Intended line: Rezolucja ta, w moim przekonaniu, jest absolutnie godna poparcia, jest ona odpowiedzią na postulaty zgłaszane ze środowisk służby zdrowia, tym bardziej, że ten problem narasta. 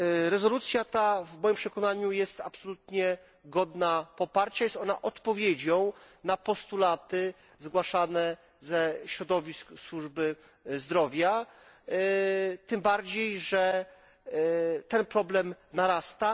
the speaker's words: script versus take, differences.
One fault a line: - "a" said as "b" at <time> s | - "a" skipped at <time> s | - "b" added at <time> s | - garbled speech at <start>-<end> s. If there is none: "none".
none